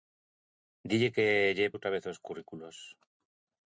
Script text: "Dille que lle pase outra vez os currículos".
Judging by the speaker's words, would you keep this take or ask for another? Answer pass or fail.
fail